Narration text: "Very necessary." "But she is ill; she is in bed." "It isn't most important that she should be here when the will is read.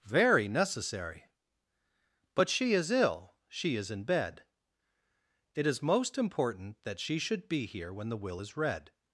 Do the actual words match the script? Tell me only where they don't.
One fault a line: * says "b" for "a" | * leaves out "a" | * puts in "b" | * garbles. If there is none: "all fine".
* says "is" for "isn't"